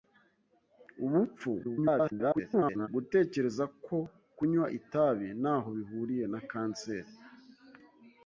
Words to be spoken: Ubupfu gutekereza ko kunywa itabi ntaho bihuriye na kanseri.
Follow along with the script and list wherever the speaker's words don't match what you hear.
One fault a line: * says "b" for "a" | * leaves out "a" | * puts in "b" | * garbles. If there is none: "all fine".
* garbles